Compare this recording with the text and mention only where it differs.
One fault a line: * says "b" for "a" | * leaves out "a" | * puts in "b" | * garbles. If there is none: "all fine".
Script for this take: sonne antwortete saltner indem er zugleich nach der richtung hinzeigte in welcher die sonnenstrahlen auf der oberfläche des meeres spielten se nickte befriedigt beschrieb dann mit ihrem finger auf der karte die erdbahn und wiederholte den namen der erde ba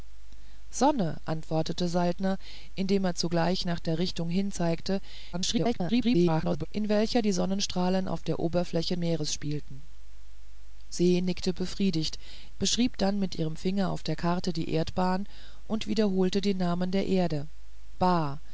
* garbles
* leaves out "des"